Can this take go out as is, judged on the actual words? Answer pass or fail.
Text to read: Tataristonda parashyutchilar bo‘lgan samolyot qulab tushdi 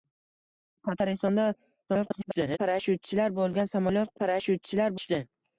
fail